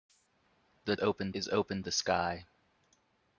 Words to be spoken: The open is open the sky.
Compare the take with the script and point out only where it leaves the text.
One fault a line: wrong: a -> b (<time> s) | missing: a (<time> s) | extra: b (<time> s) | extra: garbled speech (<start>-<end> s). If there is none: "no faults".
no faults